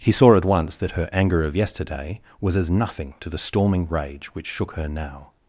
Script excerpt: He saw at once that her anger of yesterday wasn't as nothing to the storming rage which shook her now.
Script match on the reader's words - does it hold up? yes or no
no